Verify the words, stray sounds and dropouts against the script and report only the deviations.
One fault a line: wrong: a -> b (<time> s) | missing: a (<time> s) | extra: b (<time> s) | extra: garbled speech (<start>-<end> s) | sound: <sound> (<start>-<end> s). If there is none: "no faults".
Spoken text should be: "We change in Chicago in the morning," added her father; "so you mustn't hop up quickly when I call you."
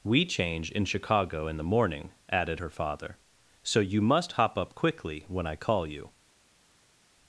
wrong: mustn't -> must (4.0 s)